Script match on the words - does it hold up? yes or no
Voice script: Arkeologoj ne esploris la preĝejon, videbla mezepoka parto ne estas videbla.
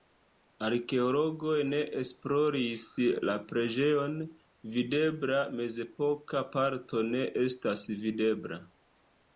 yes